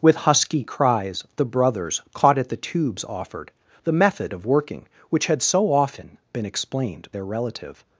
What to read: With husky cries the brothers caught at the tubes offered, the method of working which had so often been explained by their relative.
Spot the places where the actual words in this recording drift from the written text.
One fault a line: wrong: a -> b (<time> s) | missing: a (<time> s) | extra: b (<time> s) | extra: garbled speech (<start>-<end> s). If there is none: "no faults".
missing: by (7.1 s)